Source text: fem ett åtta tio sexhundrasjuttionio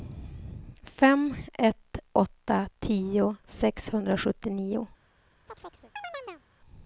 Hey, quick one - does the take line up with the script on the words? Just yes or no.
yes